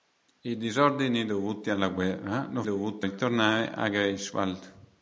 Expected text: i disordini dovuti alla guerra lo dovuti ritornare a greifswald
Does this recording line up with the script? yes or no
yes